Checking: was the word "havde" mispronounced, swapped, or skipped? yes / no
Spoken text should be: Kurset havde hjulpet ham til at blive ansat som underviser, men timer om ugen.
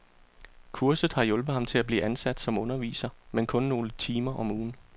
yes